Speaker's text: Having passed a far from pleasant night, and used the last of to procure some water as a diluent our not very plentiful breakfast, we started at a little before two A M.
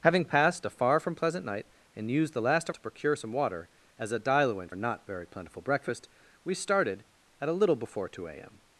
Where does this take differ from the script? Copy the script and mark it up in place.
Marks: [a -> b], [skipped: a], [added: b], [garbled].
Having passed a far from pleasant night, and used the last of to procure some water as a diluent our not very plentiful breakfast, we started at a little before two A M.